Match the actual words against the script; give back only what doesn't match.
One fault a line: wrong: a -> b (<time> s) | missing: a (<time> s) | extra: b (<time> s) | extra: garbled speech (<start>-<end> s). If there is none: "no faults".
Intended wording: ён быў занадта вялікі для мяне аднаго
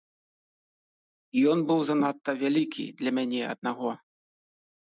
no faults